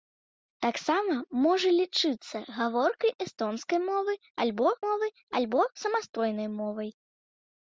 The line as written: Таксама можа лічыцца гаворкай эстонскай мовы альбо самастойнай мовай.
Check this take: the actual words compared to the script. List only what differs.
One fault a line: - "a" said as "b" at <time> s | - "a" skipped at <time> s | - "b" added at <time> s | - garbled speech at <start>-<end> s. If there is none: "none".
- "мовы альбо" added at 4.8 s